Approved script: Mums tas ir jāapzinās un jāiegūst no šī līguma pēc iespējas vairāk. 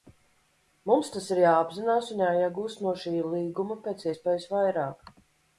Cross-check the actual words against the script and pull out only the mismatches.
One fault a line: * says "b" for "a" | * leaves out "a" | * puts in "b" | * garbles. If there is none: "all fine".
all fine